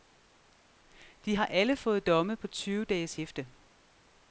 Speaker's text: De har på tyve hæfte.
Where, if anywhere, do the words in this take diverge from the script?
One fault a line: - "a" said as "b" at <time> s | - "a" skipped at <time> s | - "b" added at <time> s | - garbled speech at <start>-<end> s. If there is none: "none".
- "alle fået domme" added at 1.5 s
- "dages" added at 2.8 s